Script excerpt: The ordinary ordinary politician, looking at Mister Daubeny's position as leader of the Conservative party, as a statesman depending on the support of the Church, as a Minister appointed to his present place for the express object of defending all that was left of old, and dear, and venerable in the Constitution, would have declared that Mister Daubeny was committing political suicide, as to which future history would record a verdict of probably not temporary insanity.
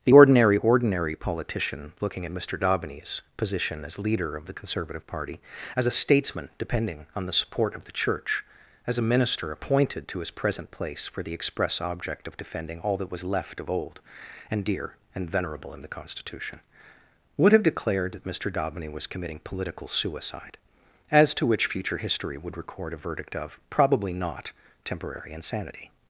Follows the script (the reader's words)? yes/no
yes